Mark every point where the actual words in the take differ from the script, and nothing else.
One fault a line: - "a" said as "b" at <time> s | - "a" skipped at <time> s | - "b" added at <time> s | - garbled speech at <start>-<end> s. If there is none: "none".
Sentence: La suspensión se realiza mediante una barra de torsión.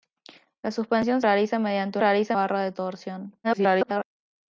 - "se" skipped at 1.2 s
- "una" said as "realiza" at 2.0 s
- garbled speech at 3.4-4.0 s